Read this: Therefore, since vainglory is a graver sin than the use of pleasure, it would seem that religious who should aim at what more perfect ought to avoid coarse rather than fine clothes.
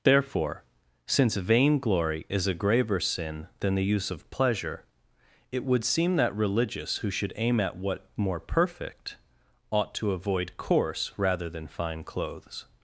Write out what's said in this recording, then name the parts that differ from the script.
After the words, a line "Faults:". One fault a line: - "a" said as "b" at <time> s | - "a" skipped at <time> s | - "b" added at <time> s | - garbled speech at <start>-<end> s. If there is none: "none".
Therefore, since vainglory is a graver sin than the use of pleasure, it would seem that religious who should aim at what more perfect ought to avoid coarse rather than fine clothes.
Faults:
none